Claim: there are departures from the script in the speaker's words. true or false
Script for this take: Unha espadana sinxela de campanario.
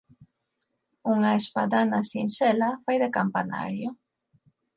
true